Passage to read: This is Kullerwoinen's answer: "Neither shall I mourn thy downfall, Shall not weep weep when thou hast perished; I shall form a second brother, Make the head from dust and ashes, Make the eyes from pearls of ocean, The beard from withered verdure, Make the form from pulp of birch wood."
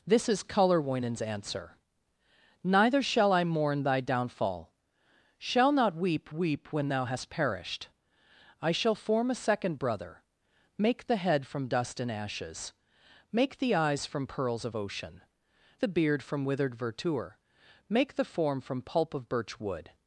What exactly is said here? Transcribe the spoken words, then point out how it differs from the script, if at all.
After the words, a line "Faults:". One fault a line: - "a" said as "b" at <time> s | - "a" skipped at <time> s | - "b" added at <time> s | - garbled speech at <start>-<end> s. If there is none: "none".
This is Kullerwoinen's answer: "Neither shall I mourn thy downfall, Shall not weep weep when thou hast perished; I shall form a second brother, Make the head from dust and ashes, Make the eyes from pearls of ocean, The beard from withered verdure, Make the form from pulp of birch wood."
Faults:
none